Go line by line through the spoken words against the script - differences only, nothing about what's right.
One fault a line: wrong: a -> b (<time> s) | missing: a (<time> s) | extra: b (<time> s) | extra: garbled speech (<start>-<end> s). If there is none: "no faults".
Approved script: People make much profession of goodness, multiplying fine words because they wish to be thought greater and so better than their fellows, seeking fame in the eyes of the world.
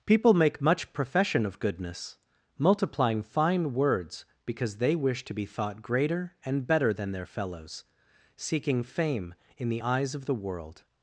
missing: so (6.7 s)